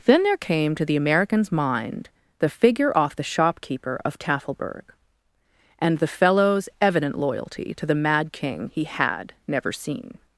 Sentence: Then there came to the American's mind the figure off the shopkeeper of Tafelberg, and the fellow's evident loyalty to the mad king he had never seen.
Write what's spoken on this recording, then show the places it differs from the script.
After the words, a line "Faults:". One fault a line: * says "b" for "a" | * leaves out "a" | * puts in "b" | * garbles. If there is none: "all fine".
Then there came to the American's mind the figure off the shopkeeper of Tafelberg, and the fellow's evident loyalty to the mad king he had never seen.
Faults:
all fine